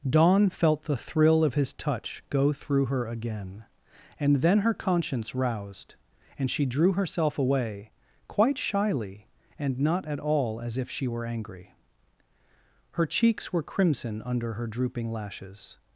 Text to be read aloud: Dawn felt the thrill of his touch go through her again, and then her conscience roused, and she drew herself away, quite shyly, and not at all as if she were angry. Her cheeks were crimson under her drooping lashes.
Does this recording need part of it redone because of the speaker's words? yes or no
no